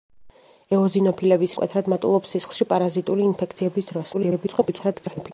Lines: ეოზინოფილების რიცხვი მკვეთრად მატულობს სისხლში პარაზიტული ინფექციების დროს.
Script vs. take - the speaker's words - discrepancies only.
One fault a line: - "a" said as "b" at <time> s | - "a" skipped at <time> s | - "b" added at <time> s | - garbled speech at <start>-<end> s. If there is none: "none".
- "რიცხვი" skipped at 1.5 s
- garbled speech at 4.1-5.3 s